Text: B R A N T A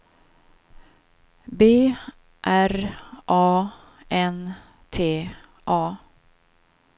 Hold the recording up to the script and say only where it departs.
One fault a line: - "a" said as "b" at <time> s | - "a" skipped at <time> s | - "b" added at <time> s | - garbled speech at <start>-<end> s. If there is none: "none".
none